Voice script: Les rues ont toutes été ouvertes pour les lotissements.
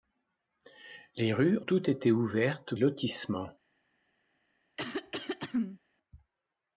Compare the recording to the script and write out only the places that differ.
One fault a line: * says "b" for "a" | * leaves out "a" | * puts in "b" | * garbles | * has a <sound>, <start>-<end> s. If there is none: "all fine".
* leaves out "ont"
* leaves out "pour les"
* has a throat clearing, 4.8-5.8 s